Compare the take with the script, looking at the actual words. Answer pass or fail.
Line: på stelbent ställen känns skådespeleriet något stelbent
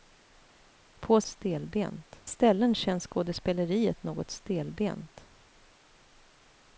pass